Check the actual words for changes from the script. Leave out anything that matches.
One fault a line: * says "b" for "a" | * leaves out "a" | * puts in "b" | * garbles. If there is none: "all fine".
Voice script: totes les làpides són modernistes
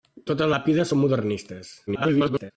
* leaves out "les"
* garbles